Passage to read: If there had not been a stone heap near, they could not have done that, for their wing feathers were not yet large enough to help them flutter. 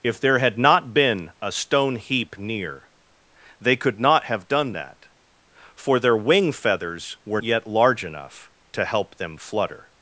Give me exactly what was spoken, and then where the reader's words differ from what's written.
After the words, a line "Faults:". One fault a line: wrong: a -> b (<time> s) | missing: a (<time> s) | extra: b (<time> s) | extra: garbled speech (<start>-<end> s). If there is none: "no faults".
If there had not been a stone heap near, they could not have done that, for their wing feathers were yet large enough to help them flutter.
Faults:
missing: not (7.4 s)